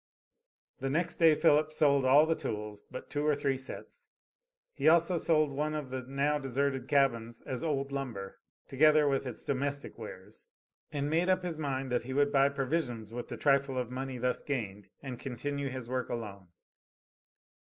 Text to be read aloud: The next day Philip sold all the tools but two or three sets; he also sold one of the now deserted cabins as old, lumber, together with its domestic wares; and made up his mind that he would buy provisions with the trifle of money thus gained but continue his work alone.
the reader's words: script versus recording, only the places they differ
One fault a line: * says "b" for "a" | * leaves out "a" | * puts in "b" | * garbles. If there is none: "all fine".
* says "and" for "but"